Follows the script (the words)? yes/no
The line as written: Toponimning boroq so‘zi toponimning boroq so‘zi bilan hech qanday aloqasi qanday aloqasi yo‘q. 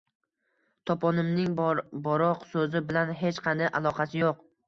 no